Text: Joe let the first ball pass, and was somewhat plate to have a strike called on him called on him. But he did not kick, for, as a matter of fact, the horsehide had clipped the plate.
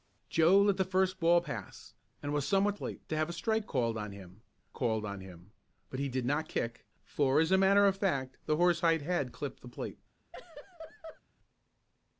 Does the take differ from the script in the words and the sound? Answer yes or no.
yes